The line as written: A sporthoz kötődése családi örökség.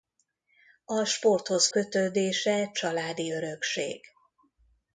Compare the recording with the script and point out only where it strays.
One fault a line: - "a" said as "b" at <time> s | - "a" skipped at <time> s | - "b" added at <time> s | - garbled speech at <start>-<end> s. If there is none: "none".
none